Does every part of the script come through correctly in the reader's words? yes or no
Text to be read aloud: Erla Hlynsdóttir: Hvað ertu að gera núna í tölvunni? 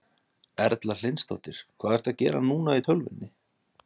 yes